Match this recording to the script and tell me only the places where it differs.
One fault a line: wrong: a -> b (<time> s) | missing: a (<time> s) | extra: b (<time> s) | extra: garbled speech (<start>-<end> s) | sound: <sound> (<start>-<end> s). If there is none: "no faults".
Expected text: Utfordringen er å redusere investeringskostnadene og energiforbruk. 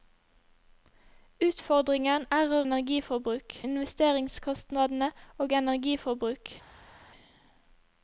wrong: redusere -> energiforbruk (2.7 s)